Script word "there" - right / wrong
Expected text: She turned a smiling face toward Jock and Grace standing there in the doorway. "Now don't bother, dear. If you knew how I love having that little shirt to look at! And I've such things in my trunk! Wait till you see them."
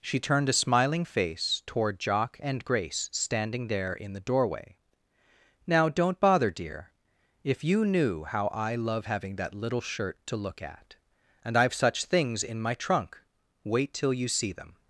right